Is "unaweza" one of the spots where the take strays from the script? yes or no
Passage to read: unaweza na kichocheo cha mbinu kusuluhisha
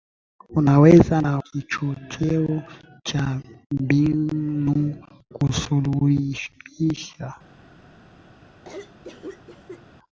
no